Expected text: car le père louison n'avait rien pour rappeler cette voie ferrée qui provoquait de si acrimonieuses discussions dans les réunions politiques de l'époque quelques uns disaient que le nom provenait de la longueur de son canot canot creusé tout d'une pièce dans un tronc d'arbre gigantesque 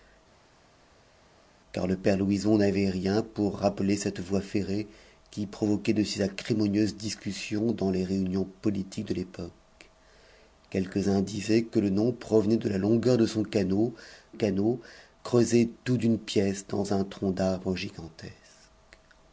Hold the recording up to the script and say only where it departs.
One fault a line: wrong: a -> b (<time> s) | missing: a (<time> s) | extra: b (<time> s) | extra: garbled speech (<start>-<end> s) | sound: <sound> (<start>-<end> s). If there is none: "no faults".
no faults